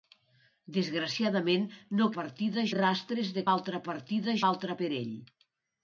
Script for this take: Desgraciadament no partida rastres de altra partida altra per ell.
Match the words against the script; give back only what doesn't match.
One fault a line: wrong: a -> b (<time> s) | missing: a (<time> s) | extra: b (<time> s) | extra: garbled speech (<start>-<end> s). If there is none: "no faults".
no faults